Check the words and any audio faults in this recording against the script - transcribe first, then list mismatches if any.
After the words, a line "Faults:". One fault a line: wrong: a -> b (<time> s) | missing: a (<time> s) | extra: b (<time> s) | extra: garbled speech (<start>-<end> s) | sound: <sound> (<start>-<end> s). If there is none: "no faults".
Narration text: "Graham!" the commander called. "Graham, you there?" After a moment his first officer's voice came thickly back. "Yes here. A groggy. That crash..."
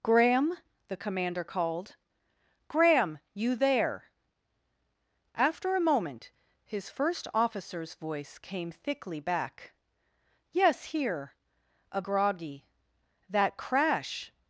"Graham!" the commander called. "Graham, you there?" After a moment his first officer's voice came thickly back. "Yes here. A groggy. That crash..."
Faults:
no faults